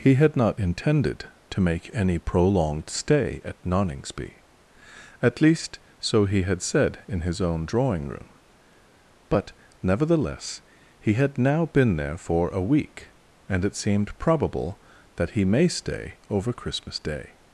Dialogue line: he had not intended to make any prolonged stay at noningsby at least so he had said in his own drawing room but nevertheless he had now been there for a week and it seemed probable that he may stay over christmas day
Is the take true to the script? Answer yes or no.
yes